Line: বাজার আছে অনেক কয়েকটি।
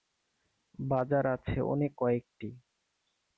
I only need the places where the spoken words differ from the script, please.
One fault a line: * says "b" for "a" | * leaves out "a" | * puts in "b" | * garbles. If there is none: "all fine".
all fine